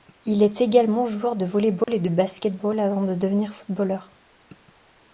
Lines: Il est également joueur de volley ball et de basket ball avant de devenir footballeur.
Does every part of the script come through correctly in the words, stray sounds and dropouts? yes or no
no